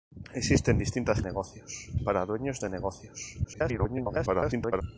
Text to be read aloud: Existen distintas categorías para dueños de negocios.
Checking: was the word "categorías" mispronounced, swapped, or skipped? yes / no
yes